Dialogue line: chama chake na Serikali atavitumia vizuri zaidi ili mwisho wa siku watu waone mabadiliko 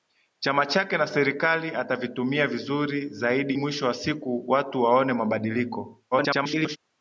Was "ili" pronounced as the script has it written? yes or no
no